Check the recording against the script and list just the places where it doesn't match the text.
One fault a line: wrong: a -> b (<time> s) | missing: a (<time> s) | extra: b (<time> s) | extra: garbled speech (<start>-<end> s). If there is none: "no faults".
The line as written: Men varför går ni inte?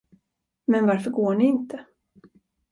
no faults